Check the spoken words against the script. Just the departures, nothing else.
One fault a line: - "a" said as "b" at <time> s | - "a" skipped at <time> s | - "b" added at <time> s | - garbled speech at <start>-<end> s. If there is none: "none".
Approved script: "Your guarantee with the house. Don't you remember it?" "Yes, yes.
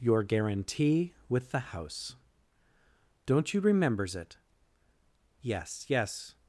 - "remember" said as "remembers" at 3.6 s